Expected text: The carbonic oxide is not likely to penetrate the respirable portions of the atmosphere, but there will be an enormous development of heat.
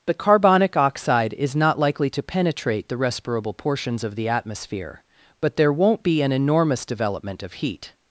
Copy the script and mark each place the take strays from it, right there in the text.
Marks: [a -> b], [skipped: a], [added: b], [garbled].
The carbonic oxide is not likely to penetrate the respirable portions of the atmosphere, but there [will -> won't] be an enormous development of heat.